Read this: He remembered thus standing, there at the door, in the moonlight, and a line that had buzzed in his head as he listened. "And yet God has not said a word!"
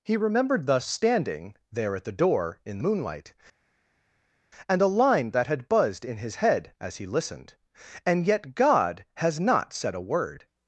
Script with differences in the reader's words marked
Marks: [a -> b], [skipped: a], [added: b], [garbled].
He remembered thus standing, there at the door, in [skipped: the] moonlight, and a line that had buzzed in his head as he listened. "And yet God has not said a word!"